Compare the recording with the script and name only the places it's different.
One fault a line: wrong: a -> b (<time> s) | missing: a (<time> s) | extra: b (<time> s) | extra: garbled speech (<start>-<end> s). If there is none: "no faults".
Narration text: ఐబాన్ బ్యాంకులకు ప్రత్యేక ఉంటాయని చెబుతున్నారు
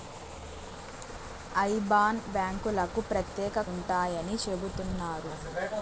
no faults